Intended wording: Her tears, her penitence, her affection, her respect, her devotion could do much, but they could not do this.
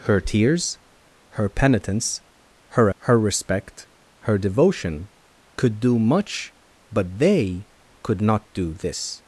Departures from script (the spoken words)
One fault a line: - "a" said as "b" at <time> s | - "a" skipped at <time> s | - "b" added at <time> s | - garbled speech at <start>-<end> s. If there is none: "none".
- "affection" skipped at 2.9 s